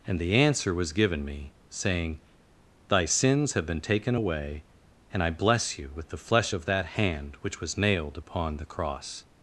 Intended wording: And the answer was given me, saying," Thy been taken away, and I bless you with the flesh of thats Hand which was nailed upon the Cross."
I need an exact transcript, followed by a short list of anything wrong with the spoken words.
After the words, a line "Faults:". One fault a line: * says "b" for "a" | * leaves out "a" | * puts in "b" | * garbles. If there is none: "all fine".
And the answer was given me, saying," Thy sins have been taken away, and I bless you with the flesh of that Hand which was nailed upon the Cross."
Faults:
* puts in "sins have"
* says "that" for "thats"